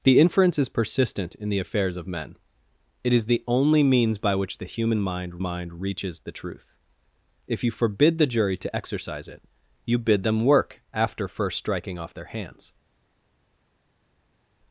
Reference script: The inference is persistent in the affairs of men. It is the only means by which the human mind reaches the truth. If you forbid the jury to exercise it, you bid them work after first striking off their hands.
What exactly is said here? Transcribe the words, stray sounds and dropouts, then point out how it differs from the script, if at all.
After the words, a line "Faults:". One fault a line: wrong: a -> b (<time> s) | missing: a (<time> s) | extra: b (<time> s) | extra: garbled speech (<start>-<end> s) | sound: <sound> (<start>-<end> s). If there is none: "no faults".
The inference is persistent in the affairs of men. It is the only means by which the human mind mind reaches the truth. If you forbid the jury to exercise it, you bid them work after first striking off their hands.
Faults:
extra: mind (5.4 s)